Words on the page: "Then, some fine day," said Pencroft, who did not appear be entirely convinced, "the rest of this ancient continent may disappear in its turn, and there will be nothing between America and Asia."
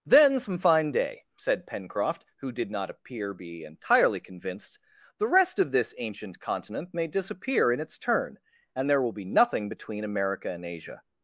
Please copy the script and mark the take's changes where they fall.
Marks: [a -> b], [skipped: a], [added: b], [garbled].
"Then, some fine day," said Pencroft, who did not appear be entirely convinced, "the rest of this ancient continent may disappear in its turn, and there will be nothing between America and Asia."